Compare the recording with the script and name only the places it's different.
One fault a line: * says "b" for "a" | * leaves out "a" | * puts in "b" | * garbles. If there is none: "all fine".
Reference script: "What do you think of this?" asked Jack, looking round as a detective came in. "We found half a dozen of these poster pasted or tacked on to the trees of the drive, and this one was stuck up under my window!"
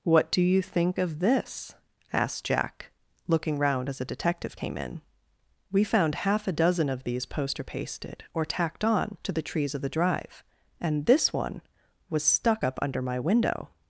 all fine